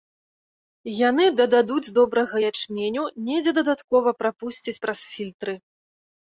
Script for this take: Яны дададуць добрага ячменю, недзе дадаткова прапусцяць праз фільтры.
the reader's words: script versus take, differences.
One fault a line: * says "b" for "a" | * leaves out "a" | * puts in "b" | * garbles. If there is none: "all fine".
all fine